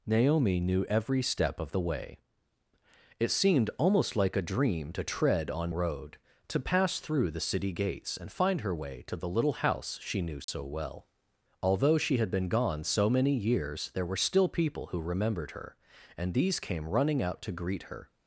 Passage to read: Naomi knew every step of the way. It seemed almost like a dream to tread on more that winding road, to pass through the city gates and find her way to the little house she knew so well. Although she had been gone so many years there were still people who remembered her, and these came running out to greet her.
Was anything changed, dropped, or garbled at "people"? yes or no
no